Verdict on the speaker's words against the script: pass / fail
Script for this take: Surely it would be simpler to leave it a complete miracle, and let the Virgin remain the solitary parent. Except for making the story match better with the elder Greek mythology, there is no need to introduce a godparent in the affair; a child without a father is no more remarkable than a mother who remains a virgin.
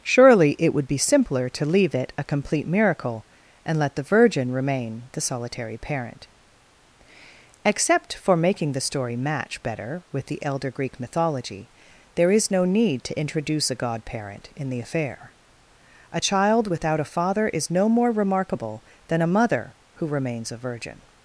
pass